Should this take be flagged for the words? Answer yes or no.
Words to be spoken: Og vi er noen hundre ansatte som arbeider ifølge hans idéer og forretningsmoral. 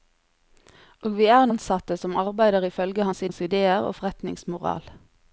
yes